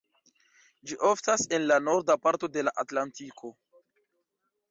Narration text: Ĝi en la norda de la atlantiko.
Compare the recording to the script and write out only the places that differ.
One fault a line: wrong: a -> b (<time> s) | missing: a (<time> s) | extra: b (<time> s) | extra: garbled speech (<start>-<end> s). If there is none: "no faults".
extra: oftas (1.1 s)
extra: parto (2.2 s)